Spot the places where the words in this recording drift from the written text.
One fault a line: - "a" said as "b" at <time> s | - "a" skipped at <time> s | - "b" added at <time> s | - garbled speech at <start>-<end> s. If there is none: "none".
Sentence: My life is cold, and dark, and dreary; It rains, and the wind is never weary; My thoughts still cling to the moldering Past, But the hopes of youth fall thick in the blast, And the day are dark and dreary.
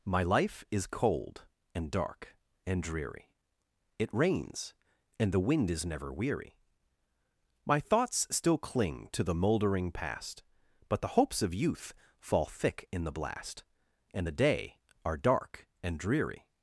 none